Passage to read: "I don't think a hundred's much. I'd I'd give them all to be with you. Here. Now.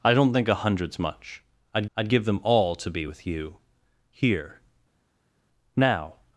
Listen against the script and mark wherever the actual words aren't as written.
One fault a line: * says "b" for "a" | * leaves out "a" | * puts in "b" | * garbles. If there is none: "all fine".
all fine